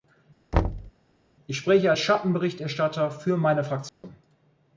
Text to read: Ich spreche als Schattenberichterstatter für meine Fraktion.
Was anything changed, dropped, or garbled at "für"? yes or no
no